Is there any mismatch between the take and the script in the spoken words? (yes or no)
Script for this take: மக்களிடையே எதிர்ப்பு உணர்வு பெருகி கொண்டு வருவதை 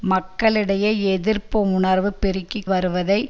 yes